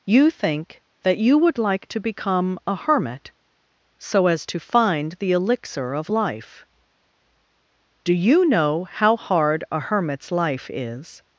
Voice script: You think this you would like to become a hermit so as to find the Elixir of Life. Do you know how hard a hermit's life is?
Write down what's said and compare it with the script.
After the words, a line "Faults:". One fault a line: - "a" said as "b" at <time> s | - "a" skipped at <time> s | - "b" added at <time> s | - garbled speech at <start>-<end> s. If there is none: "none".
You think that you would like to become a hermit so as to find the Elixir of Life. Do you know how hard a hermit's life is?
Faults:
- "this" said as "that" at 1.0 s